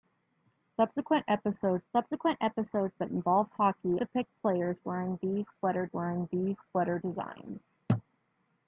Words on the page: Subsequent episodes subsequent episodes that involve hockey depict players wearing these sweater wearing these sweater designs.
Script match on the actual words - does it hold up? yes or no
yes